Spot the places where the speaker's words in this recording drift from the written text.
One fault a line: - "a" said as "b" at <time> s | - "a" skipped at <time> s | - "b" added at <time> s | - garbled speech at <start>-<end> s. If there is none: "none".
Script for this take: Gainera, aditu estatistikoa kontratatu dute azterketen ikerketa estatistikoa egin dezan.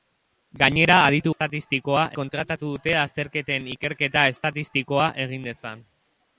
none